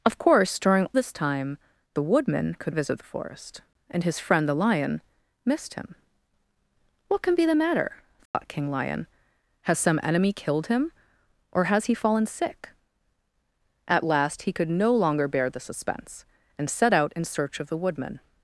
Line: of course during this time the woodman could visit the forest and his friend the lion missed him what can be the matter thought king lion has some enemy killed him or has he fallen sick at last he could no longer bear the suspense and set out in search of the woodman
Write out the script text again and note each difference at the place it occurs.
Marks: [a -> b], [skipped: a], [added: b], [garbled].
of course during this time the woodman could visit the forest and his friend the lion missed him what can be the matter thought king lion has some enemy killed him or has he fallen sick at last he could no longer bear the suspense and set out in search of the woodman